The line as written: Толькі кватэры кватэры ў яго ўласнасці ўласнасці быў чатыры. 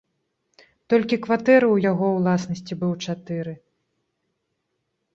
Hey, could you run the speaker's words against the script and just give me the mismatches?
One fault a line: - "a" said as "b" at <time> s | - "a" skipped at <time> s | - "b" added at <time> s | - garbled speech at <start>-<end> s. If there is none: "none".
- "кватэры" skipped at 1.7 s
- "ўласнасці" skipped at 2.7 s